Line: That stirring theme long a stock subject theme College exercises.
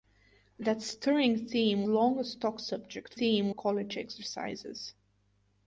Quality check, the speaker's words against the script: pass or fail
pass